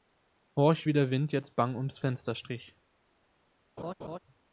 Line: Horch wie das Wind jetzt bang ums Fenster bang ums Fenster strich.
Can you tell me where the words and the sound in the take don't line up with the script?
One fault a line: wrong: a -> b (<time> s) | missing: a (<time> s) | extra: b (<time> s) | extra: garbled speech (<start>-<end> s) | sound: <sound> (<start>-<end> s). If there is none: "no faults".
wrong: das -> der (0.9 s)
missing: bang ums Fenster (2.4 s)
sound: laugh (3.8-4.2 s)